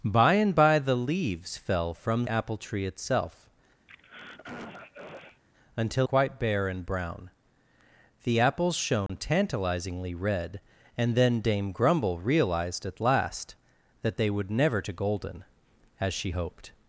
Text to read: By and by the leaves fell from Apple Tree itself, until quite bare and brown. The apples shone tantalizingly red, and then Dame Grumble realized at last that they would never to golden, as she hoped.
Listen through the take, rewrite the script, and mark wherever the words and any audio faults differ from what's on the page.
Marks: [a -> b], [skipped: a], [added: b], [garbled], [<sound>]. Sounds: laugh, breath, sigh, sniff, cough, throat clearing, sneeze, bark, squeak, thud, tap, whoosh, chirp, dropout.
By and by the leaves fell from Apple Tree itself, [throat clearing] until quite bare and brown. The apples shone [dropout] tantalizingly red, and then Dame Grumble realized at last that they would never to golden, as she hoped.